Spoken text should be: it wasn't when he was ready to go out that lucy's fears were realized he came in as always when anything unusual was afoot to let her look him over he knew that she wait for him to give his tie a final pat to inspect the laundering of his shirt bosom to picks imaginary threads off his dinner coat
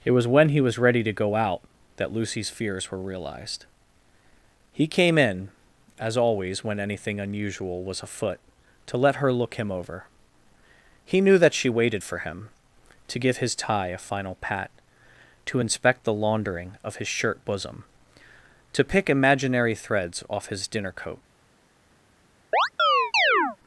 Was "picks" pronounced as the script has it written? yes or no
no